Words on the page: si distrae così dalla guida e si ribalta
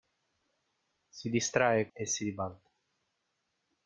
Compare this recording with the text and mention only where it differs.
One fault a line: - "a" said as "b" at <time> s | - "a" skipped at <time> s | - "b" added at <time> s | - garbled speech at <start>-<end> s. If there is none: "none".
- "così dalla guida" skipped at 1.9 s